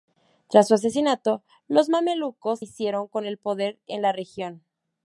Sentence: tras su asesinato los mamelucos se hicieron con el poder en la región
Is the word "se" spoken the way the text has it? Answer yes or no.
no